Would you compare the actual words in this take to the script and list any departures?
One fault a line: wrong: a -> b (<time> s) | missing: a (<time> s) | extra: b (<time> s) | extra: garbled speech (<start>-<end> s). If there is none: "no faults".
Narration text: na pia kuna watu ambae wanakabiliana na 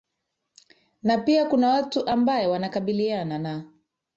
no faults